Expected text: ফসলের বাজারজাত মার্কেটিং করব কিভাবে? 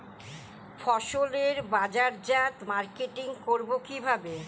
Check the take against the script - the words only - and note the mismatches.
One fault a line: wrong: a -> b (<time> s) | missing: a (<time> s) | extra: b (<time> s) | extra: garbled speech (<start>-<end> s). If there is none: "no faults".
no faults